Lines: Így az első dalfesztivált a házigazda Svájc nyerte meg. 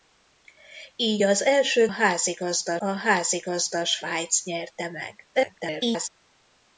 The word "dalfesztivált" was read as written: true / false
false